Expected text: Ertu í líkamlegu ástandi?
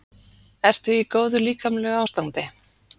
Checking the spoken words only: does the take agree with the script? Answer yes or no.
no